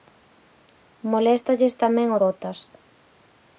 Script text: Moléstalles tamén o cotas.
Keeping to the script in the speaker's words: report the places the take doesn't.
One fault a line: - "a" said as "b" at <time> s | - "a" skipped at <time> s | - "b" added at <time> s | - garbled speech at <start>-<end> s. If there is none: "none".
none